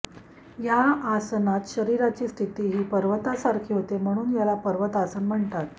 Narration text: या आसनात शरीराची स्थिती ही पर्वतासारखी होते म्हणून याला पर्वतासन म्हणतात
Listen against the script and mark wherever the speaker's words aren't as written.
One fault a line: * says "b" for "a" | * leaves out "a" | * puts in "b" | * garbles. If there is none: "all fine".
all fine